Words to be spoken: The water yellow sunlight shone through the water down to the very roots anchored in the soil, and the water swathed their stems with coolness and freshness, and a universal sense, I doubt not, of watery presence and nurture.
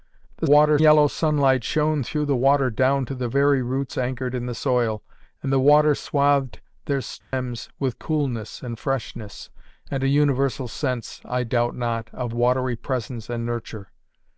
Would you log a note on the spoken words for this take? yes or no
no